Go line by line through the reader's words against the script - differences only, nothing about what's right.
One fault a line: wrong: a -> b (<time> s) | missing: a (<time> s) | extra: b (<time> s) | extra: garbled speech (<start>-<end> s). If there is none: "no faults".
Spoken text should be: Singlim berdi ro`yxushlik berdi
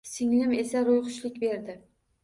wrong: berdi -> esa (0.6 s)